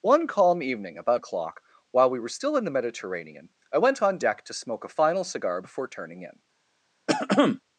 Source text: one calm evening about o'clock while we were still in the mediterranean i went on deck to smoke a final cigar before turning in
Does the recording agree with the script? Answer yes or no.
yes